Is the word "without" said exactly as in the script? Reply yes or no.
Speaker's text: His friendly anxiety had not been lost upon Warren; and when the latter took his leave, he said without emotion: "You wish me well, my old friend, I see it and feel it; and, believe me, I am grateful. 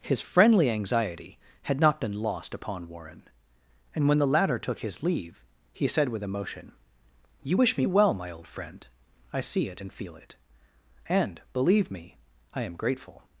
no